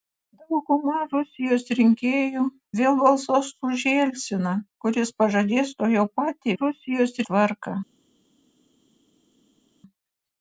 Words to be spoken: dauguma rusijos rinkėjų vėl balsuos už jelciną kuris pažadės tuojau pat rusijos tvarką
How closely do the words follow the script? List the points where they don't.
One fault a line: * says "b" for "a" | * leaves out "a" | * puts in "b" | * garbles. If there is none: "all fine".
all fine